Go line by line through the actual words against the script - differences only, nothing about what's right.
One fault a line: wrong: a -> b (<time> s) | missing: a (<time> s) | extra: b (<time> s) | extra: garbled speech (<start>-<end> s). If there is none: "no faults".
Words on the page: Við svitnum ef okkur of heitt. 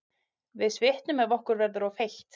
extra: verður (1.6 s)